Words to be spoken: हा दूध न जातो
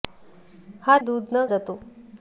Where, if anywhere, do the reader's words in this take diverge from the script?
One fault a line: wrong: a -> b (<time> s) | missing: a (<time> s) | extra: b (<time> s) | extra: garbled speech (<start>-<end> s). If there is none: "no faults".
no faults